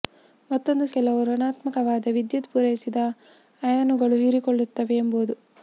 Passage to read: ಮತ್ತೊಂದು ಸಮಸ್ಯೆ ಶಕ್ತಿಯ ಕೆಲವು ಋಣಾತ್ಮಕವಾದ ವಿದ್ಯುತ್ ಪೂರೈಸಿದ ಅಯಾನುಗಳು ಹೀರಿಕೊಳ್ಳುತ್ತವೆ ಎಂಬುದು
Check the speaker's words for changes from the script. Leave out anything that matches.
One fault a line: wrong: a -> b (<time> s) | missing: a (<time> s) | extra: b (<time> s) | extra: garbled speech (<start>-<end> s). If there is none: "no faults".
missing: ಸಮಸ್ಯೆ ಶಕ್ತಿಯ (0.8 s)